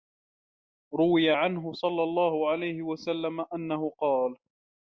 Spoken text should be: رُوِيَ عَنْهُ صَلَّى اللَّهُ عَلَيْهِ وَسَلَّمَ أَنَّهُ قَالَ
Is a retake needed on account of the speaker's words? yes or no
no